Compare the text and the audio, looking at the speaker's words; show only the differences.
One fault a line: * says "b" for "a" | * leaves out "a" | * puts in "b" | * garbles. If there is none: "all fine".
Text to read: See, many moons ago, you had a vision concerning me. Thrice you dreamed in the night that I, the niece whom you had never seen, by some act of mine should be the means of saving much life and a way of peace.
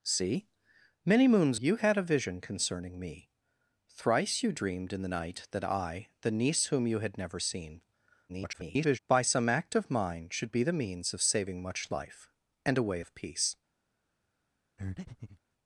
* leaves out "ago"
* garbles